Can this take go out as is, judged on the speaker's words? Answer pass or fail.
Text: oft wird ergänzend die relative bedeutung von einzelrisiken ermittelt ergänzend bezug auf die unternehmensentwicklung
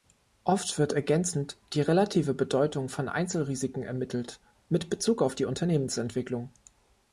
fail